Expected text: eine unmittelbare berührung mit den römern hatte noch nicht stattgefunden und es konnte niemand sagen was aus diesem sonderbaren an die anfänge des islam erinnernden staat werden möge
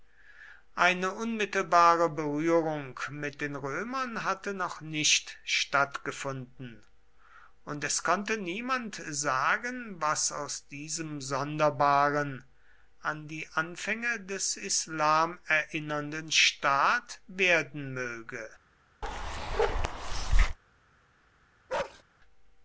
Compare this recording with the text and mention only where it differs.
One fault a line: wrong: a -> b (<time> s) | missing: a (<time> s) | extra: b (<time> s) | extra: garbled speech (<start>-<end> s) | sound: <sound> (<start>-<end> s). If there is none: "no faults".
sound: bark (19.0-20.6 s)
sound: bark (21.7-22.0 s)